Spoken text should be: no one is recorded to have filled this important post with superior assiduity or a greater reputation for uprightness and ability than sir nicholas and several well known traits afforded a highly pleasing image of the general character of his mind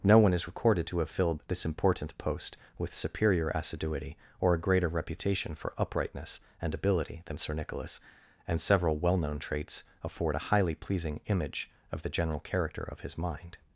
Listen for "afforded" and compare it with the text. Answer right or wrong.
wrong